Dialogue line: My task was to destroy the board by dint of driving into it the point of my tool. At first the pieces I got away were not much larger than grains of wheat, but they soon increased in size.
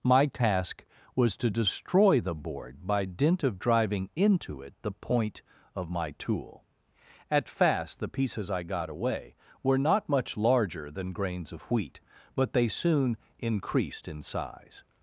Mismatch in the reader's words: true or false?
true